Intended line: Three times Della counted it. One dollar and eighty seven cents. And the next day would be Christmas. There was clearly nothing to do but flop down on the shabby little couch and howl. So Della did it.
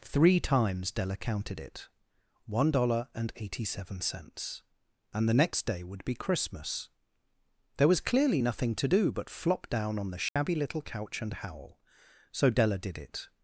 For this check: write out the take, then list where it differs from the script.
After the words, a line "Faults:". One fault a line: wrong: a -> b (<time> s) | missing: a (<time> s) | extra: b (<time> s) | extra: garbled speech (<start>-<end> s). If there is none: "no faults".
Three times Della counted it. One dollar and eighty seven cents. And the next day would be Christmas. There was clearly nothing to do but flop down on the shabby little couch and howl. So Della did it.
Faults:
no faults